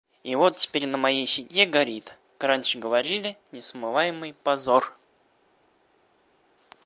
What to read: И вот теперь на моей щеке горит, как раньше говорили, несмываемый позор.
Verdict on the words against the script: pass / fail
fail